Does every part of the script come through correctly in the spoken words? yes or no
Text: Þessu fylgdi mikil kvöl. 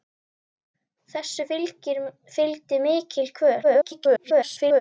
no